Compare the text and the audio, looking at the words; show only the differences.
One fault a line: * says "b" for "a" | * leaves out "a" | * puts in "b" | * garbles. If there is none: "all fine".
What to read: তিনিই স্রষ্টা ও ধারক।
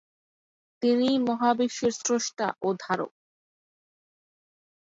* puts in "মহাবিশ্বের"